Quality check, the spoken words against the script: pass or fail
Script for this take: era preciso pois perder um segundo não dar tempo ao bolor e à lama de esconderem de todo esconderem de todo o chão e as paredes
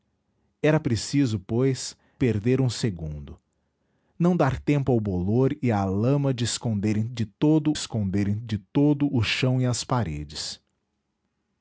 pass